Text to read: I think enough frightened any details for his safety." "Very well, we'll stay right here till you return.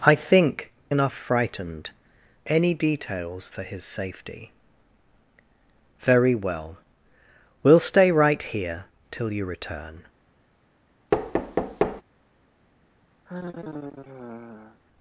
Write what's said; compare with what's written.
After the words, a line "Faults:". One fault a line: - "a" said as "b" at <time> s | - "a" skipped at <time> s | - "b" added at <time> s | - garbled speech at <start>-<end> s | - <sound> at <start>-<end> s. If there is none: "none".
I think enough frightened any details for his safety." "Very well, we'll stay right here till you return.
Faults:
- thud at 11.1-12.0 s
- sigh at 13.3-14.8 s